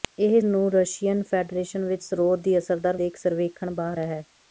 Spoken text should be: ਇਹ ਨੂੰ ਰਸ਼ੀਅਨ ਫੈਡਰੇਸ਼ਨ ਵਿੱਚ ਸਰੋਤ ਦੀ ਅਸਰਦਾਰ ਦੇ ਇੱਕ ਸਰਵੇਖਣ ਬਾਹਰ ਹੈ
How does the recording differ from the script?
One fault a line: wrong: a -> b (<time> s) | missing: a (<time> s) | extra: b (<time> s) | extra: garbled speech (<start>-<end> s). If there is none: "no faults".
no faults